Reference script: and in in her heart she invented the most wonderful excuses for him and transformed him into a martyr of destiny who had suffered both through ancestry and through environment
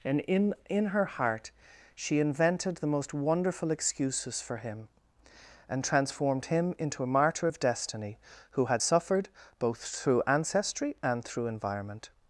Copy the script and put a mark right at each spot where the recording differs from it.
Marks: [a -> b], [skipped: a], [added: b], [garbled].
and in in her heart she invented the most wonderful excuses for him and transformed him into a martyr of destiny who had suffered both through ancestry and through environment